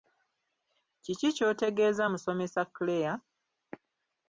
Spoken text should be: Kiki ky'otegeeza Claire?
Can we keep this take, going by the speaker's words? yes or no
no